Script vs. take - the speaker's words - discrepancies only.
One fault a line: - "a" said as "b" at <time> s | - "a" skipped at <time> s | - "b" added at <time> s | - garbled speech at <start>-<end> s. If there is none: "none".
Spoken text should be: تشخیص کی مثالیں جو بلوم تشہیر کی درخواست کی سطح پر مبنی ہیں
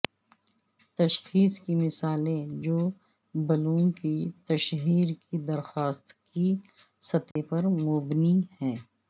- "کی" added at 3.9 s